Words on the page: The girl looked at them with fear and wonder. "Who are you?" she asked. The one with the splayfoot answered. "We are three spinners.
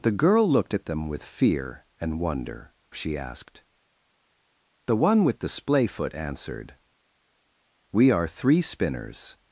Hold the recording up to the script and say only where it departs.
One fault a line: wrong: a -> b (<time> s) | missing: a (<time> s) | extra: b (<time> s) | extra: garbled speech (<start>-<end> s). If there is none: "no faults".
missing: Who are you (2.7 s)